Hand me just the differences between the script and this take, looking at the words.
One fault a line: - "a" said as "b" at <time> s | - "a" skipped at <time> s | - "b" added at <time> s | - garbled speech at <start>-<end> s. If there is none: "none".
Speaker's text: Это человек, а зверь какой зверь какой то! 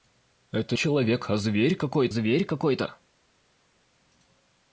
none